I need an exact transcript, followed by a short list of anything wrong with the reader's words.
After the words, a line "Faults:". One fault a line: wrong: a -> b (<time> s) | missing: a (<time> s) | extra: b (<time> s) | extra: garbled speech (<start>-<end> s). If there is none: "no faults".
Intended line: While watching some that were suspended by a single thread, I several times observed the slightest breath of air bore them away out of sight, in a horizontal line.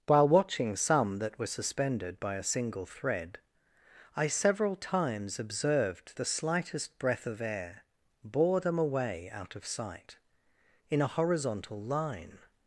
While watching some that were suspended by a single thread, I several times observed the slightest breath of air bore them away out of sight, in a horizontal line.
Faults:
no faults